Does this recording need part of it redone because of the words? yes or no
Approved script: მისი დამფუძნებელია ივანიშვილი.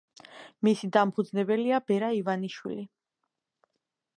yes